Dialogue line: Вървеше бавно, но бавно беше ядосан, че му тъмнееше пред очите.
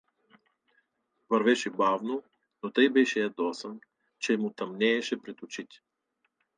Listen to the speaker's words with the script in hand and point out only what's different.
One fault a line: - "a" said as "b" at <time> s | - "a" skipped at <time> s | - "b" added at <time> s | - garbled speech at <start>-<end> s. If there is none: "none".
- "бавно" said as "тъй" at 2.7 s